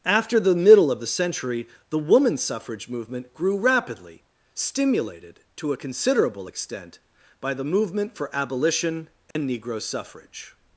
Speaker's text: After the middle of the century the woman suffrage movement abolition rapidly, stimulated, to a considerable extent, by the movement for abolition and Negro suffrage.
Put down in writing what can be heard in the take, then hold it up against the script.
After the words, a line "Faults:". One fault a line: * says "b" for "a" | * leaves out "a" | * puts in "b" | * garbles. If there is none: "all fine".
After the middle of the century the woman suffrage movement grew rapidly, stimulated, to a considerable extent, by the movement for abolition and Negro suffrage.
Faults:
* says "grew" for "abolition"